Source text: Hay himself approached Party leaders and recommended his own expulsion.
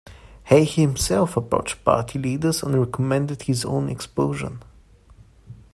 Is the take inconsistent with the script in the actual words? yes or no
no